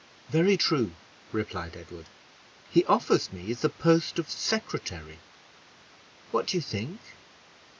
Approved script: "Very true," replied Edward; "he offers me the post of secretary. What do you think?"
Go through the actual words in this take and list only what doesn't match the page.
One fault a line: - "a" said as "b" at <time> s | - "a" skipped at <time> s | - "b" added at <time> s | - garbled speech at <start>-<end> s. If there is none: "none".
none